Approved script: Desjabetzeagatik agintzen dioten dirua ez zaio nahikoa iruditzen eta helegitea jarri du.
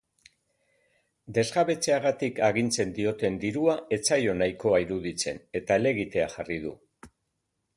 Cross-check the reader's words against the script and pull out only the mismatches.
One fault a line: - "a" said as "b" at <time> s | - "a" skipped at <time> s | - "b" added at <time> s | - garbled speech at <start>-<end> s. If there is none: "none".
none